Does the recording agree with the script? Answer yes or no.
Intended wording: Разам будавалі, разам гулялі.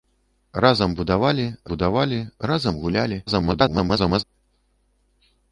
no